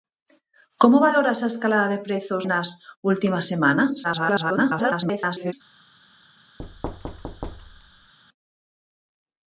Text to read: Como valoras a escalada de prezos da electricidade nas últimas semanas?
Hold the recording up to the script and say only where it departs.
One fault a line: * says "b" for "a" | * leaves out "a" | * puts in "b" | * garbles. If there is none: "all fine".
* leaves out "da electricidade"
* garbles